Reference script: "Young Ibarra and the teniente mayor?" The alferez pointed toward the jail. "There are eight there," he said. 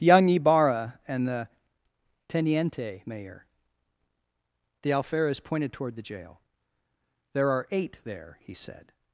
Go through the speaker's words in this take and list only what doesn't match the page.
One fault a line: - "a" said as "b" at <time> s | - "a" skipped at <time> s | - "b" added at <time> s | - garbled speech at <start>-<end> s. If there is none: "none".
none